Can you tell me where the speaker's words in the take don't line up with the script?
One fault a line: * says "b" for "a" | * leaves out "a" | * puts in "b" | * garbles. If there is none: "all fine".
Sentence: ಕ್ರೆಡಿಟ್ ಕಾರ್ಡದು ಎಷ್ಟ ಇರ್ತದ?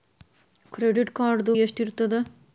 all fine